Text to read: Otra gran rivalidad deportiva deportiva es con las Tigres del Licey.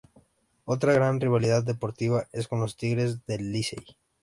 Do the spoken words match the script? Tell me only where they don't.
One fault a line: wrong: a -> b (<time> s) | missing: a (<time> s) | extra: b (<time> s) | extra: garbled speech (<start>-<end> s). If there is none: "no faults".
missing: deportiva (2.3 s)
wrong: las -> los (2.6 s)